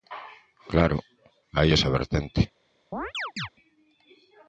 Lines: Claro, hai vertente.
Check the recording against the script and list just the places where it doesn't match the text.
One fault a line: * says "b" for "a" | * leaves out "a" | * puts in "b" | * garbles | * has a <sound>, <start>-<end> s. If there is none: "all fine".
* puts in "esa"
* has a chirp, 2.9-3.5 s